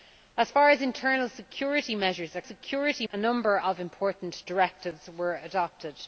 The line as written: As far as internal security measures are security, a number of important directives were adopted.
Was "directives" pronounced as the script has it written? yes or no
yes